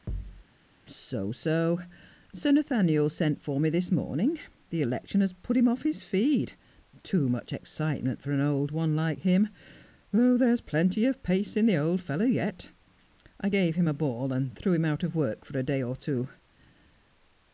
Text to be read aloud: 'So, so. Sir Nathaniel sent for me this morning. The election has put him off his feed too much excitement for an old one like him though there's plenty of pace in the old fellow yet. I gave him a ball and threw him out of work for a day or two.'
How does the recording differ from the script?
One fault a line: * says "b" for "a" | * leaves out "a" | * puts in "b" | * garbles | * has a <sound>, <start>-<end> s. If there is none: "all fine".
* has a thud, 0.1-0.4 s